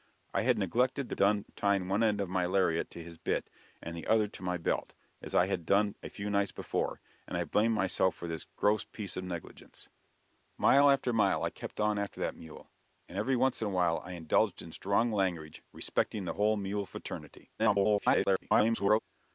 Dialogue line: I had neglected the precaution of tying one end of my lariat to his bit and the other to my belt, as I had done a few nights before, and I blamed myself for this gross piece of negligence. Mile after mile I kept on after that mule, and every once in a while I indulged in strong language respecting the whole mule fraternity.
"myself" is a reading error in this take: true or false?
false